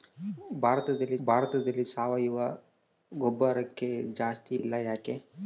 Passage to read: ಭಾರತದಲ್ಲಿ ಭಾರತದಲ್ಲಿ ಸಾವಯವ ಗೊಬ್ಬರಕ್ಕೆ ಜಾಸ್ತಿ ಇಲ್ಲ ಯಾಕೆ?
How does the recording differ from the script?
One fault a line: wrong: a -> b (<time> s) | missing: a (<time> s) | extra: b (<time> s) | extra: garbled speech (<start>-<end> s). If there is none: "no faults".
no faults